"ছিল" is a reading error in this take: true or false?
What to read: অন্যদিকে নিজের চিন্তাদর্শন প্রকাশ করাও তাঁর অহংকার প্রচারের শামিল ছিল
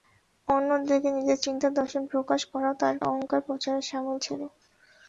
false